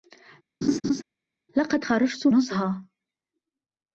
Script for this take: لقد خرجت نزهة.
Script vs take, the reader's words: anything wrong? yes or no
no